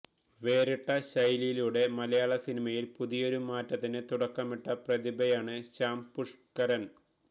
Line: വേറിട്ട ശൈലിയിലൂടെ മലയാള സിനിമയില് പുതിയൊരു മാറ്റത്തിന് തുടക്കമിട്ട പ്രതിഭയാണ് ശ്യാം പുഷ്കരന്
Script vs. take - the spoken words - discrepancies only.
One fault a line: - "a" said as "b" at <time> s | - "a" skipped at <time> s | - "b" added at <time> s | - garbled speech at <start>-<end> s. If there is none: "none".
none